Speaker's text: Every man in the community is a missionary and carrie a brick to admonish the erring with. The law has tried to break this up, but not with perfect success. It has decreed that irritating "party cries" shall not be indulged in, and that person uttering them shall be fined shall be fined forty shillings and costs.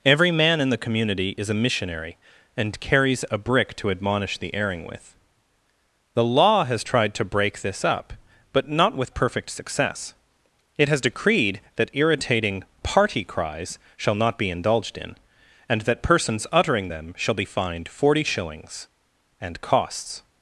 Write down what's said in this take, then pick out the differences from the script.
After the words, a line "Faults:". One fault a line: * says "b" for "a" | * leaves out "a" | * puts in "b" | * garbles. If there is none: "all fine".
Every man in the community is a missionary and carries a brick to admonish the erring with. The law has tried to break this up, but not with perfect success. It has decreed that irritating "party cries" shall not be indulged in, and that persons uttering them shall be fined forty shillings and costs.
Faults:
* says "carries" for "carrie"
* says "persons" for "person"
* leaves out "shall be fined"